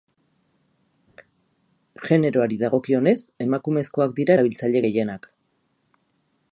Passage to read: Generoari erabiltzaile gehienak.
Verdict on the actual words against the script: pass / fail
fail